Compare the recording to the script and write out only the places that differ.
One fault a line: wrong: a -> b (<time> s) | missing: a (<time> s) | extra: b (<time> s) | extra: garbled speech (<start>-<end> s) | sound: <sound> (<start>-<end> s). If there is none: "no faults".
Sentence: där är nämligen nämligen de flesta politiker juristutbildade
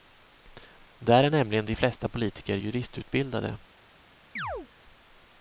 missing: nämligen (1.7 s)
sound: chirp (4.4-4.7 s)